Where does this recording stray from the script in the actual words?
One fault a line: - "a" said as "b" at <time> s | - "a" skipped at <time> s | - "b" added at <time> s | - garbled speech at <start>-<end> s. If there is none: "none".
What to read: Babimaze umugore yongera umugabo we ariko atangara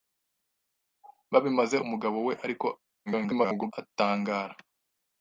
- "umugore yongera" skipped at 1.8 s
- garbled speech at 3.1-3.7 s